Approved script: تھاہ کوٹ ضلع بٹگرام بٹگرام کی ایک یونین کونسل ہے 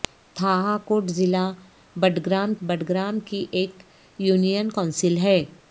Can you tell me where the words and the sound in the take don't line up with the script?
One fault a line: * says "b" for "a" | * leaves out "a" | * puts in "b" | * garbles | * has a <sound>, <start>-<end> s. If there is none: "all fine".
all fine